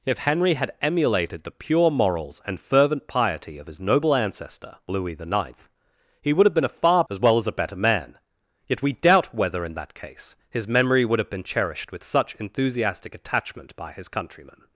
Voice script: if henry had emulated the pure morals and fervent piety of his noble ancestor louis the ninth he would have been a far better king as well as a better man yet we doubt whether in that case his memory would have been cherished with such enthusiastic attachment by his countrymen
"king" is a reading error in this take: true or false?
true